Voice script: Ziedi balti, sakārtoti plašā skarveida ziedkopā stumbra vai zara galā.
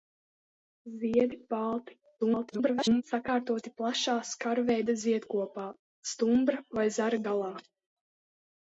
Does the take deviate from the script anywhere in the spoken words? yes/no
yes